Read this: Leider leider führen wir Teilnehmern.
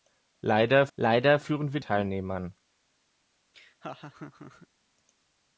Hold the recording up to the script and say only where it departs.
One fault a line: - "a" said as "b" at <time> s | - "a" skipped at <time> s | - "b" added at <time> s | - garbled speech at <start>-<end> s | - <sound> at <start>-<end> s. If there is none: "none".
- laugh at 3.5-4.7 s